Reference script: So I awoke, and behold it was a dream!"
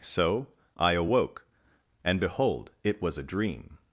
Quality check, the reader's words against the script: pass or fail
pass